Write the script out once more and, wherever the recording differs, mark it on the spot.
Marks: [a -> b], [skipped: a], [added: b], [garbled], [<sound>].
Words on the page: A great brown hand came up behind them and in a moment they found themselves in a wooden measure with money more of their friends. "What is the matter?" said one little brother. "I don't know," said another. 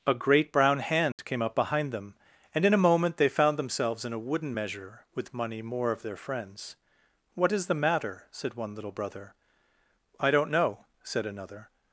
A great brown hand [dropout] came up behind them and in a moment they found themselves in a wooden measure with money more of their friends. "What is the matter?" said one little brother. "I don't know," said another.